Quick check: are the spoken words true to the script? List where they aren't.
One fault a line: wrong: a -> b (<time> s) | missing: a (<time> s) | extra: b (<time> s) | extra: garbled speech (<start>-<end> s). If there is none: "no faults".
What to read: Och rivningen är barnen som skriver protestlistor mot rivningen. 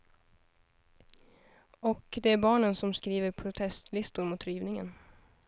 wrong: rivningen -> det (2.2 s)